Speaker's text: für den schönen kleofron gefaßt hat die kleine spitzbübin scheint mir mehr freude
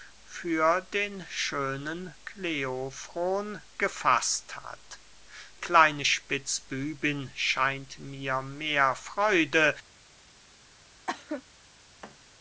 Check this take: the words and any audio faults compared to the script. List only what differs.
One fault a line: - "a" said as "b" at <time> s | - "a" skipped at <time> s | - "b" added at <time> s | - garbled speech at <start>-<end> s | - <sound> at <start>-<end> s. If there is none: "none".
- "die" skipped at 5.0 s
- cough at 11.1-11.4 s
- thud at 12.0-12.2 s